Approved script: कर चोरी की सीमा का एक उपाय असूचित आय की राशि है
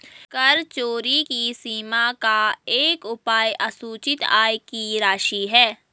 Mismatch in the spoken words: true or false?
false